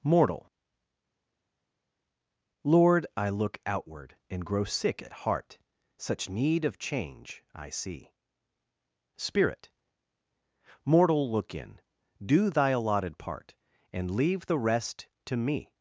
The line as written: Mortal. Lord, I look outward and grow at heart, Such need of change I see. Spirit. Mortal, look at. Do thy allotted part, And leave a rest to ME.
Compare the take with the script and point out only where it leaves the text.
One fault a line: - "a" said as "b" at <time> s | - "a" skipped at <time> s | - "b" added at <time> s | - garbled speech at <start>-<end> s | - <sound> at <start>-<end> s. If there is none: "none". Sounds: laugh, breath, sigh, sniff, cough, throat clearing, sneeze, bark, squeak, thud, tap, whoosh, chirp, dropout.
- "sick" added at 4.6 s
- "at" said as "in" at 11.6 s
- "a" said as "the" at 14.5 s